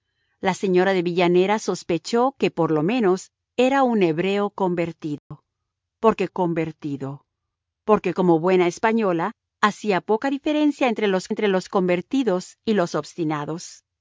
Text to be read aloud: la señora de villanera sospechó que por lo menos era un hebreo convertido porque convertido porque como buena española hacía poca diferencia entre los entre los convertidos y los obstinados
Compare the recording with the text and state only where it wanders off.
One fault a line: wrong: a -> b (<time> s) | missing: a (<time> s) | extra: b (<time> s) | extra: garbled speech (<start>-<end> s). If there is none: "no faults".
no faults